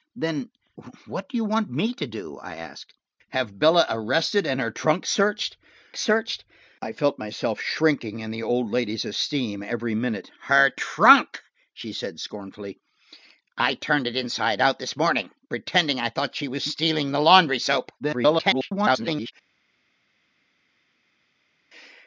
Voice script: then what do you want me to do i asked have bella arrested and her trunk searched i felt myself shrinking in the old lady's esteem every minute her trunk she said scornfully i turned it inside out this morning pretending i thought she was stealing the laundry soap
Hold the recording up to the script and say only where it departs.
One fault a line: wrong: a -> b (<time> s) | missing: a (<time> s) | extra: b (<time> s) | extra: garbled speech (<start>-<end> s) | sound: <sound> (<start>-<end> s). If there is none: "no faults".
extra: searched (6.0 s)
extra: garbled speech (18.0-19.3 s)